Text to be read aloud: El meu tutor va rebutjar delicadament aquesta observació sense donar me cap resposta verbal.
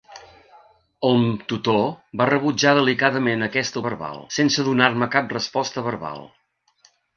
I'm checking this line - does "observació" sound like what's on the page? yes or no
no